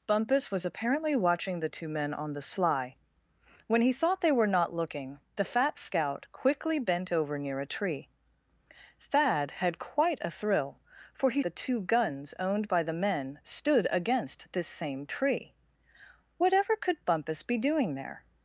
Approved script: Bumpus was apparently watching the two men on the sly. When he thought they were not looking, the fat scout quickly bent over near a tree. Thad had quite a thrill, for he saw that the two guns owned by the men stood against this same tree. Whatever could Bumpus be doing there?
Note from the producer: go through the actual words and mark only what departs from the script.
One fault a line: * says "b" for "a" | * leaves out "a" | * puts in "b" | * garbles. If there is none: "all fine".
* leaves out "saw that"